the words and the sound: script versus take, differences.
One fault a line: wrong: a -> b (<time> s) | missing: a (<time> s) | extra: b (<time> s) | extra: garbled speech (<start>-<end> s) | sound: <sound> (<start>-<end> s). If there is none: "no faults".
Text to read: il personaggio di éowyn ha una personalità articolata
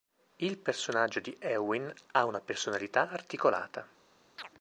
sound: chirp (4.4-4.5 s)